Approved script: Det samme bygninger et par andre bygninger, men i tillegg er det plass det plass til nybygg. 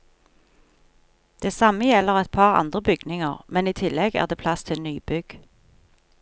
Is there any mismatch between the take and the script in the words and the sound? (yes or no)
yes